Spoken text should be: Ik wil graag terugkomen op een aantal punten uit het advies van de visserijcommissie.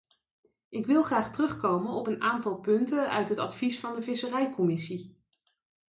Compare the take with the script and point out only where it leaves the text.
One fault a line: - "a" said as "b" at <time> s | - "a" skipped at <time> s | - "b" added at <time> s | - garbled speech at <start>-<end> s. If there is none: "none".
none